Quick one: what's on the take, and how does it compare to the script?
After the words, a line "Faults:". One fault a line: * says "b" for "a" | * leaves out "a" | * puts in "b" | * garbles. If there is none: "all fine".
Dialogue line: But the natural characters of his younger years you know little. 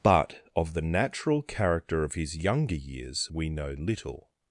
But of the natural character of his younger years we know little.
Faults:
* puts in "of"
* says "character" for "characters"
* says "we" for "you"